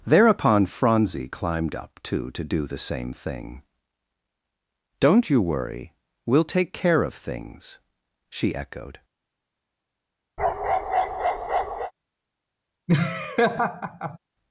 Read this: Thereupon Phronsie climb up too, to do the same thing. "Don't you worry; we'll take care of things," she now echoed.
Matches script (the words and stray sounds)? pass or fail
fail